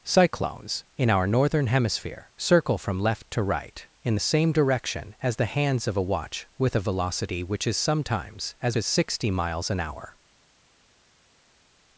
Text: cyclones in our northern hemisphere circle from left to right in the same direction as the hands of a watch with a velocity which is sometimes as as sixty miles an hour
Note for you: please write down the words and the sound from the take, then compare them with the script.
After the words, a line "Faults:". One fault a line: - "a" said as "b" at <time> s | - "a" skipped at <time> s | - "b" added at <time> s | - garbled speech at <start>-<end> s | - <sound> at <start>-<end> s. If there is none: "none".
cyclones in our northern hemisphere circle from left to right in the same direction as the hands of a watch with a velocity which is sometimes as as sixty miles an hour
Faults:
none